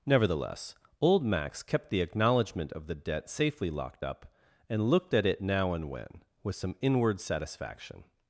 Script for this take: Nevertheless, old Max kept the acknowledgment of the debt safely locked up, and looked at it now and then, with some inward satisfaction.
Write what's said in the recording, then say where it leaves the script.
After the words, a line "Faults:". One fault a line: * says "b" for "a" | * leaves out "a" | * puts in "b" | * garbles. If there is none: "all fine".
Nevertheless, old Max kept the acknowledgment of the debt safely locked up, and looked at it now and when, with some inward satisfaction.
Faults:
* says "when" for "then"